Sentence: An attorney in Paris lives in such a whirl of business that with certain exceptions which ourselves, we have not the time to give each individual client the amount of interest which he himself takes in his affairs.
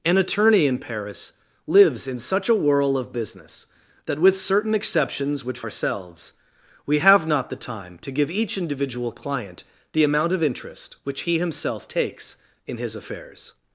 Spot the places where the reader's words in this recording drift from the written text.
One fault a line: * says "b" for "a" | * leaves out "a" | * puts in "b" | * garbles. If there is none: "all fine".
all fine